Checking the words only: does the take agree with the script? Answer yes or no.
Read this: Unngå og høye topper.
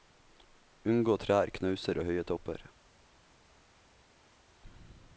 no